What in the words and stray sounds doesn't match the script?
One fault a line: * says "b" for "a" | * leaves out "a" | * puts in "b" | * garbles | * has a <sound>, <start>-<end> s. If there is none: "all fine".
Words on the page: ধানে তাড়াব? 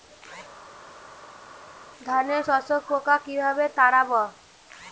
* puts in "শোষক পোকা কিভাবে"